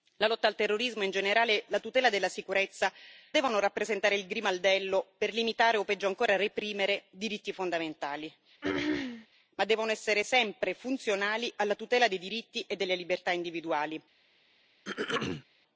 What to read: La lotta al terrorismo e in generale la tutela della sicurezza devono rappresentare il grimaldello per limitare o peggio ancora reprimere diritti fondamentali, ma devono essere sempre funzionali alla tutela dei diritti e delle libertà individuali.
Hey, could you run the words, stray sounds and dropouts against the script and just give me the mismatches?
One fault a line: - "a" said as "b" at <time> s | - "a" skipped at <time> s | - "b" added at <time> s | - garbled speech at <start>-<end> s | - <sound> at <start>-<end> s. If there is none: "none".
- throat clearing at 8.6-9.3 s
- throat clearing at 14.8-15.4 s